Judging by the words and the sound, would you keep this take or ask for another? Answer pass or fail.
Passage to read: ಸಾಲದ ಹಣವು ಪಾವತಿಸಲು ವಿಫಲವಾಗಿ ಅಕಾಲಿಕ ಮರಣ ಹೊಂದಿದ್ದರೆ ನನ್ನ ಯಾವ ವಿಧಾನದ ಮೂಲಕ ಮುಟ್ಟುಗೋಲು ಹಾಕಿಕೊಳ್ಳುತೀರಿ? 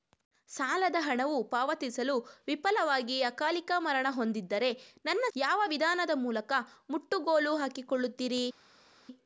pass